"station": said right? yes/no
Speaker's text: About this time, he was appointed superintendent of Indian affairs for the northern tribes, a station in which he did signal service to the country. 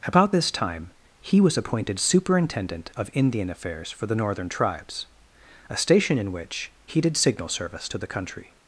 yes